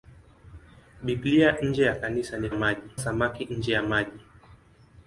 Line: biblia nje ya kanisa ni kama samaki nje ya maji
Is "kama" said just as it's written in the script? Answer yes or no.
no